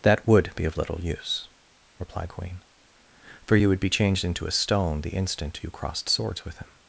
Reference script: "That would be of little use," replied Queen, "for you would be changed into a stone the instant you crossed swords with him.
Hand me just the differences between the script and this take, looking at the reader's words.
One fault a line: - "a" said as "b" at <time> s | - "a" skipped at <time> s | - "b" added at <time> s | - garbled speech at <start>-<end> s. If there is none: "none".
none